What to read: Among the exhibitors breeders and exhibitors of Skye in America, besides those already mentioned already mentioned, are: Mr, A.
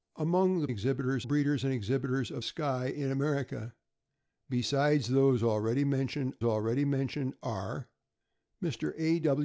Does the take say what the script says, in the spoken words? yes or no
yes